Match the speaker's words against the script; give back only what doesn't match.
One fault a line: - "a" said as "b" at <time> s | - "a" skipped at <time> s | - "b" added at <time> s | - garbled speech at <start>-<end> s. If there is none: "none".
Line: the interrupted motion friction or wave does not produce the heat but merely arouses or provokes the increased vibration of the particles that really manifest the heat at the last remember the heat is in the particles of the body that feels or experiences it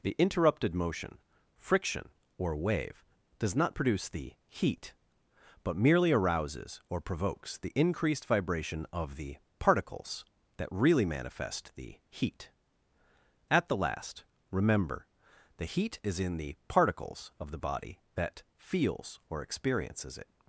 none